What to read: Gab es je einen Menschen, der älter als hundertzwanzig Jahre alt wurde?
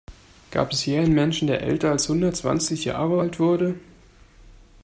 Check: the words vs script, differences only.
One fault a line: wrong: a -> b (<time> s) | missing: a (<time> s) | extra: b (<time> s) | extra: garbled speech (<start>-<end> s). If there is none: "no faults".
no faults